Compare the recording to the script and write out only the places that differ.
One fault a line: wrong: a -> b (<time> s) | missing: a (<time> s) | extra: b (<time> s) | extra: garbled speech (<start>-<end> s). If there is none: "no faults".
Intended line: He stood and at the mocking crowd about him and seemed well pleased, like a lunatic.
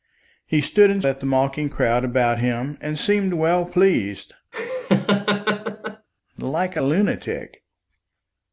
no faults